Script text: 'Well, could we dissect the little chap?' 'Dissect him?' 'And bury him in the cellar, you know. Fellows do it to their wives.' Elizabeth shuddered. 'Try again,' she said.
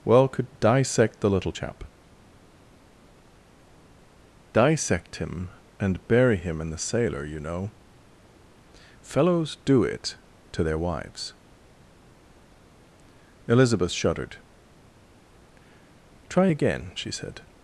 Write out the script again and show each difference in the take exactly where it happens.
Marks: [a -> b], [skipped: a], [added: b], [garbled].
'Well, could [skipped: we] dissect the little chap?' 'Dissect him?' 'And bury him in the [cellar, -> sailor] you know. Fellows do it to their wives.' Elizabeth shuddered. 'Try again,' she said.